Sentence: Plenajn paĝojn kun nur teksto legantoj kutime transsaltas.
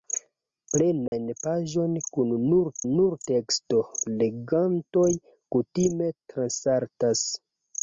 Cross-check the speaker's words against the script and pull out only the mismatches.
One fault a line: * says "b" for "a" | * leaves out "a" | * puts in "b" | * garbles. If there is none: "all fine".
* puts in "nur"